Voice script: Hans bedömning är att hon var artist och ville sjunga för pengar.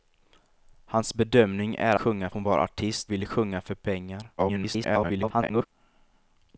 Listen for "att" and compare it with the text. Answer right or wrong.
wrong